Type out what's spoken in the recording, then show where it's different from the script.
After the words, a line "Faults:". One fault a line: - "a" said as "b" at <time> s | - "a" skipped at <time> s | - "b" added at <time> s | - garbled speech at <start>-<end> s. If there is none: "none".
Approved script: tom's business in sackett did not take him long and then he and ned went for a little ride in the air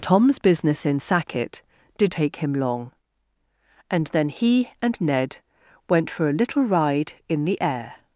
tom's business in sackett did take him long and then he and ned went for a little ride in the air
Faults:
- "not" skipped at 2.1 s